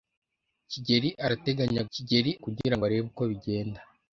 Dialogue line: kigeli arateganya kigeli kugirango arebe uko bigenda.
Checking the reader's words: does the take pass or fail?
pass